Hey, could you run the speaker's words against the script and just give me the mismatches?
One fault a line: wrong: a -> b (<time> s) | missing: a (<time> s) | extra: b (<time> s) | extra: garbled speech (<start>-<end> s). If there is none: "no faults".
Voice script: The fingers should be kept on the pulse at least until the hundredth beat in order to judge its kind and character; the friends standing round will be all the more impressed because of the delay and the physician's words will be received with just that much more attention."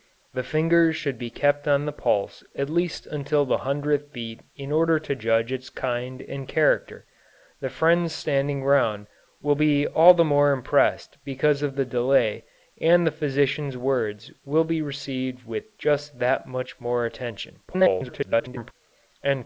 extra: garbled speech (17.7-18.7 s)